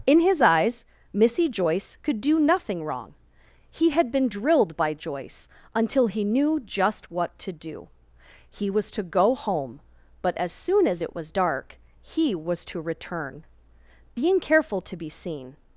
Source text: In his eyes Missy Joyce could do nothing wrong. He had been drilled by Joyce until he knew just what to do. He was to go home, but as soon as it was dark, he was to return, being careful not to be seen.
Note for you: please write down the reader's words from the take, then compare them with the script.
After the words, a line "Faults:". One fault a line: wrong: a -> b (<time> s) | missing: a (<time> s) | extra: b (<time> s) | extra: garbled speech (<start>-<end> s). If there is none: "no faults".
In his eyes Missy Joyce could do nothing wrong. He had been drilled by Joyce until he knew just what to do. He was to go home, but as soon as it was dark, he was to return, being careful to be seen.
Faults:
missing: not (14.8 s)